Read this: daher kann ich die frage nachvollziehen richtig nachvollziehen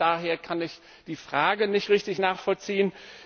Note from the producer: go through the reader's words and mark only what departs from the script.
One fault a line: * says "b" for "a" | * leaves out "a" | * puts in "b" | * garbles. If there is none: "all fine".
* says "nicht" for "nachvollziehen"